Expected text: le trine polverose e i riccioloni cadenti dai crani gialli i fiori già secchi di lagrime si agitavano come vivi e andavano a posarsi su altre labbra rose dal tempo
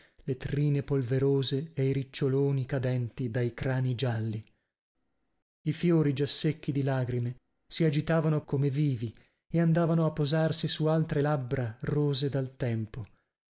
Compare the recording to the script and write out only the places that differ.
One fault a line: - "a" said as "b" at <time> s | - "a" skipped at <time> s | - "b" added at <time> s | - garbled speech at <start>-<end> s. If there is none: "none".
none